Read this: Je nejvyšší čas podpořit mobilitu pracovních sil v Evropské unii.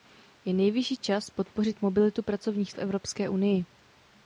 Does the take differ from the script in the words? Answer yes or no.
yes